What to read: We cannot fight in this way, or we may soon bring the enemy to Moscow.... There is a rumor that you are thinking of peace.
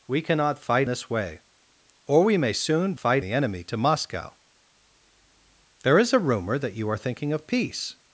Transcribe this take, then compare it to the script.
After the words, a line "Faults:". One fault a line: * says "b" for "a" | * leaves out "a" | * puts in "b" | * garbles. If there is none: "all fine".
We cannot fight this way, or we may soon fight the enemy to Moscow.... There is a rumor that you are thinking of peace.
Faults:
* leaves out "in"
* says "fight" for "bring"